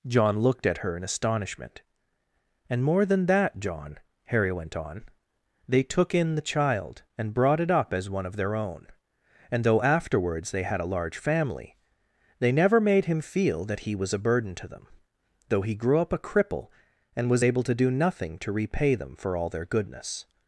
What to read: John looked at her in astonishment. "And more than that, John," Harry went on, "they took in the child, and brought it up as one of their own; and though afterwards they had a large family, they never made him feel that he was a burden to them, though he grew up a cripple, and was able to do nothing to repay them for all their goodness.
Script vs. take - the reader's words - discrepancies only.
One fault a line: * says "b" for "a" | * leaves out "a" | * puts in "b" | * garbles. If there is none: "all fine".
all fine